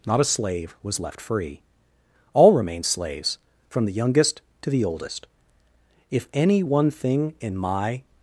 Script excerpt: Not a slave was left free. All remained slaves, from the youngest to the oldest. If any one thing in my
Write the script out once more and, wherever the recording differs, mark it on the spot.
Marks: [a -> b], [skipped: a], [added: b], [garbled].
Not a slave was left free. All remained slaves, from the youngest to the oldest. If any one thing in my